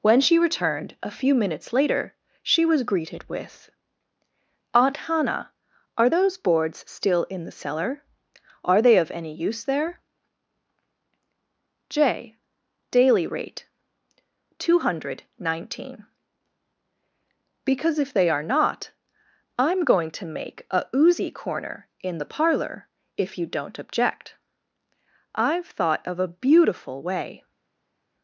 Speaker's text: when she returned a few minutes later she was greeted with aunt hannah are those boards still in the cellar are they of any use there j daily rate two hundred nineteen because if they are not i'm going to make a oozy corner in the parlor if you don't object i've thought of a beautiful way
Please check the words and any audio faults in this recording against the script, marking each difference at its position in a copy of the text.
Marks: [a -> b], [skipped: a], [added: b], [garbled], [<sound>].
when she returned a few minutes later she was greeted with aunt hannah are those boards still in the cellar are they of any use there j daily rate two hundred nineteen because if they are not i'm going to make a oozy corner in the parlor if you don't object i've thought of a beautiful way